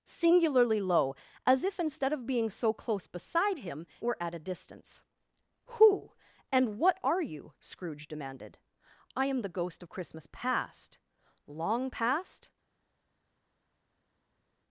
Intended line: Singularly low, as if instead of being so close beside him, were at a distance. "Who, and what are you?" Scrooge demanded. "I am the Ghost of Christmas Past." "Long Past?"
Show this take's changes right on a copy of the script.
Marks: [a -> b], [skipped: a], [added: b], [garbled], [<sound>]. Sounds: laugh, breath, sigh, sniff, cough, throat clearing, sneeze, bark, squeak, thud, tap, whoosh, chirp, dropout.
Singularly low, as if instead of being so close beside him, were at a distance. "Who, and what are you?" Scrooge demanded. "I am the Ghost of Christmas Past." "Long Past?"